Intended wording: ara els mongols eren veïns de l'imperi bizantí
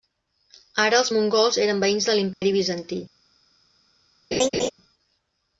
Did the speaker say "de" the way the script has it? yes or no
yes